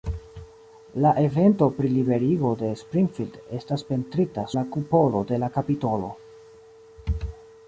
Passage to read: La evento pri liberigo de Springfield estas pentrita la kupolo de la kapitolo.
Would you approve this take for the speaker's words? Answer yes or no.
yes